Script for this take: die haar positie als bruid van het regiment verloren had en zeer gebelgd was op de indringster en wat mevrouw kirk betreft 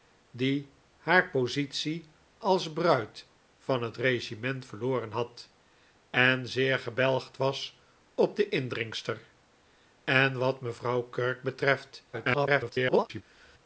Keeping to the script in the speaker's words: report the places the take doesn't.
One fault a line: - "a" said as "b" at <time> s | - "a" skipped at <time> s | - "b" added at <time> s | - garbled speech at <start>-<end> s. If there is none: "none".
- garbled speech at 12.1-13.2 s